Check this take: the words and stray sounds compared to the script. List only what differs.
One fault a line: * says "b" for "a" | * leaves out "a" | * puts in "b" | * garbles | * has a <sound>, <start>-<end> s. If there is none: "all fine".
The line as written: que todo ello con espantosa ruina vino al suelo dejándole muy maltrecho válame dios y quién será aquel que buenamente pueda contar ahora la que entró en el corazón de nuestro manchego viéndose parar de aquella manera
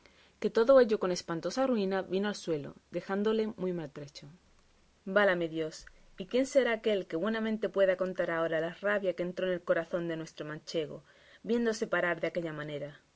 * puts in "rabia"